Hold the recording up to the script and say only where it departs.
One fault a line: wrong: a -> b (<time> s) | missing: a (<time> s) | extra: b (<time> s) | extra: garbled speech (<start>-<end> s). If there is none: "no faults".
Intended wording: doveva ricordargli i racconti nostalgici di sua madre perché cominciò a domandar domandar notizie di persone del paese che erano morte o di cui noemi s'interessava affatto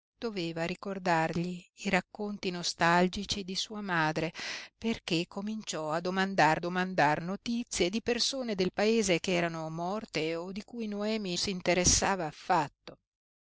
no faults